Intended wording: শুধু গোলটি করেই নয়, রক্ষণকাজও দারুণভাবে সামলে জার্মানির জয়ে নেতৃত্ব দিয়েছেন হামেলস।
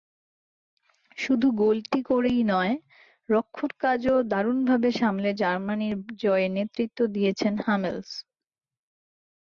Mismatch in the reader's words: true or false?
false